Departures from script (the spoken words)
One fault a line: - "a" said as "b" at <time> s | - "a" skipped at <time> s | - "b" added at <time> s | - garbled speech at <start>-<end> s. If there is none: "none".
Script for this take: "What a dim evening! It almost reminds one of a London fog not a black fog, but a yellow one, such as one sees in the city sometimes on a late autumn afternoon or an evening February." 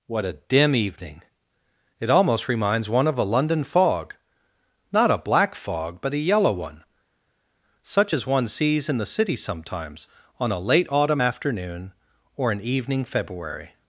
none